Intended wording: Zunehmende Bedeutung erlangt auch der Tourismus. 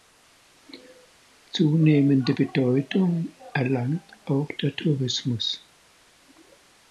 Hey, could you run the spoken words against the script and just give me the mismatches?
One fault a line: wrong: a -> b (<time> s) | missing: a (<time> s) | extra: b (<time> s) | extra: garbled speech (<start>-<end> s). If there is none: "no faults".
no faults